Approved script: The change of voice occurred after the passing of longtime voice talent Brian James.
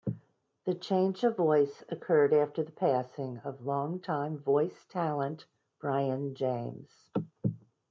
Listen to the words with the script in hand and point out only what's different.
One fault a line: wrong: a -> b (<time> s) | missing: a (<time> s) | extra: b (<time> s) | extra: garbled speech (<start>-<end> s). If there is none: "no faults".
no faults